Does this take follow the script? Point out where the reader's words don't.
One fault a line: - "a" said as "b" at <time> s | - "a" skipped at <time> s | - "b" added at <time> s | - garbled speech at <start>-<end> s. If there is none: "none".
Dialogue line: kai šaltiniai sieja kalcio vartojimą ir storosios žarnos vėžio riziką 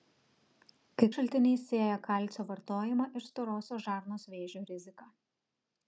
none